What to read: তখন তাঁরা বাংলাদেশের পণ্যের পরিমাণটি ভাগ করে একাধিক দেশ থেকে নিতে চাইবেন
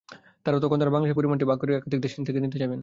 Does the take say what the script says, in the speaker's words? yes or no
no